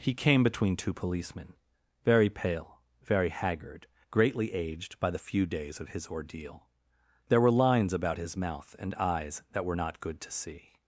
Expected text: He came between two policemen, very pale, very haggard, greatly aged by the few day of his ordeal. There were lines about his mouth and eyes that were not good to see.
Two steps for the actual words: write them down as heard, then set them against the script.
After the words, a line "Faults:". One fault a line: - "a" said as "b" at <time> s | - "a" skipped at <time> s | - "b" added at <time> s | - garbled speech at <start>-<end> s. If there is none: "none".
He came between two policemen, very pale, very haggard, greatly aged by the few days of his ordeal. There were lines about his mouth and eyes that were not good to see.
Faults:
- "day" said as "days" at 5.5 s